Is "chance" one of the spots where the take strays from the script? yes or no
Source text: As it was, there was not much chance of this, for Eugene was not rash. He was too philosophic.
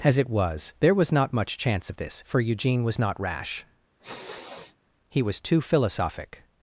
no